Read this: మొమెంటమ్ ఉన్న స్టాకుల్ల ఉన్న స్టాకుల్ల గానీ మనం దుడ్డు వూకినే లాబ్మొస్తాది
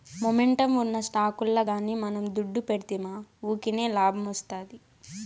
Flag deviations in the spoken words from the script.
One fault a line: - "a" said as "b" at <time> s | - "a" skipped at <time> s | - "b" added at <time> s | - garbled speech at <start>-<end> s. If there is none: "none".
- "ఉన్న స్టాకుల్ల" skipped at 1.6 s
- "పెడ్తిమా" added at 2.7 s